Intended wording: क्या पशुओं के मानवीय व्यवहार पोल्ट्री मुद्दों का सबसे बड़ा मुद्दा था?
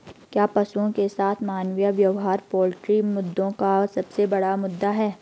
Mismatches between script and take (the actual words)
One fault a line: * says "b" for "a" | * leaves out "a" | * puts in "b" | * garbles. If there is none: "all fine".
* puts in "साथ"
* says "है" for "था"